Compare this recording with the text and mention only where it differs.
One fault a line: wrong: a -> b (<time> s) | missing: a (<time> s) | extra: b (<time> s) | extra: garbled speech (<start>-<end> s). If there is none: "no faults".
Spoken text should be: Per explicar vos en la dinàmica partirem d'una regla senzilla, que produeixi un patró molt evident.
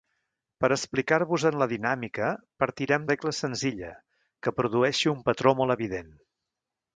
missing: d'una (3.1 s)